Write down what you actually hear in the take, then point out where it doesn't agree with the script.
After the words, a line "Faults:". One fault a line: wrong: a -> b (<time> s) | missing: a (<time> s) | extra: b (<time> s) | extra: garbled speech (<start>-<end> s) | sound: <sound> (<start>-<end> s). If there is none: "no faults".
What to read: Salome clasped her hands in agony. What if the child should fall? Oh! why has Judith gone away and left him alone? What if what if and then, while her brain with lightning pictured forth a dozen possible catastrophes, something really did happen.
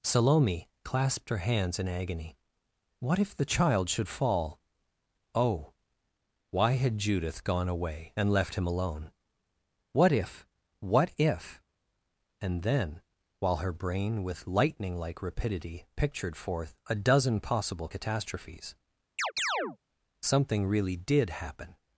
Salome clasped her hands in agony. What if the child should fall? Oh! why had Judith gone away and left him alone? What if what if and then, while her brain with lightning like rapidity pictured forth a dozen possible catastrophes, something really did happen.
Faults:
wrong: has -> had (6.7 s)
extra: like rapidity (15.0 s)
sound: chirp (19.2-19.8 s)